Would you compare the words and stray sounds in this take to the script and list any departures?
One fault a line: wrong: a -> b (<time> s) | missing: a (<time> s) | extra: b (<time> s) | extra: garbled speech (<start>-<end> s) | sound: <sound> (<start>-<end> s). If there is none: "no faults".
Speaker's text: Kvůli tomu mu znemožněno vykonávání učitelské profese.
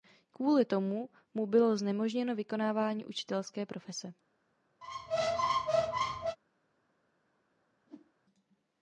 extra: bylo (1.5 s)
sound: squeak (4.8-6.4 s)
sound: whoosh (7.8-8.1 s)